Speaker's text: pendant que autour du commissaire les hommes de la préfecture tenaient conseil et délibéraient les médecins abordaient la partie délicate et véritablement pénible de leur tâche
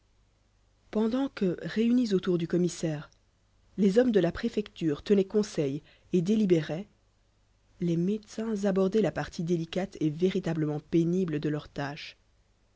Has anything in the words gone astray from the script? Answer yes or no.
yes